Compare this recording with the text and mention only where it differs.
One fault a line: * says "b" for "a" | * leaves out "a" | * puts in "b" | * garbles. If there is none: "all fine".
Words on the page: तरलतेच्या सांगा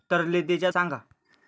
all fine